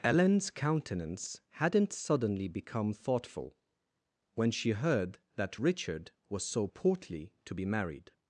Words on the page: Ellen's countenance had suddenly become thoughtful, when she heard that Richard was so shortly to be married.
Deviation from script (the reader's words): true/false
true